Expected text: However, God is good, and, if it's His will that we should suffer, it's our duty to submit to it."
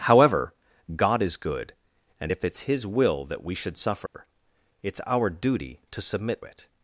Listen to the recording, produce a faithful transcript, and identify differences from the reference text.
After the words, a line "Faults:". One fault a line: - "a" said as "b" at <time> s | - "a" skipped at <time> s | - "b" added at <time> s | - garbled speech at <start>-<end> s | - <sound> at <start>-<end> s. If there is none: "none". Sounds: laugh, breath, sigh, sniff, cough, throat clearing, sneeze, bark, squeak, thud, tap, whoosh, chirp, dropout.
However, God is good, and, if it's His will that we should suffer, it's our duty to submit it."
Faults:
- dropout at 4.1-4.1 s
- "to" skipped at 6.4 s